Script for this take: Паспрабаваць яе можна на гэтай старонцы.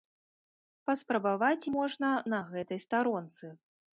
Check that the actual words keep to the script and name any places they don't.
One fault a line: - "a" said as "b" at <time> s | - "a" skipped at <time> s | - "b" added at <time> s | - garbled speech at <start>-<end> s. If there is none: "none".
- "яе" skipped at 1.7 s